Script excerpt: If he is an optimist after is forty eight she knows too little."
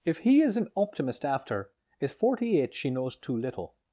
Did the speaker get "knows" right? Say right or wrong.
right